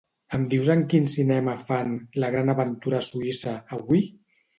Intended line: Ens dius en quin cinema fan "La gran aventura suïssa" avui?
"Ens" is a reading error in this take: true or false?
true